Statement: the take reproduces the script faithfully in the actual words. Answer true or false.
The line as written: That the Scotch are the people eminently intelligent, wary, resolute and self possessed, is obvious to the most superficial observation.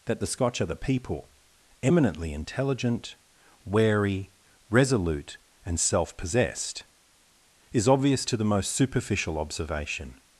true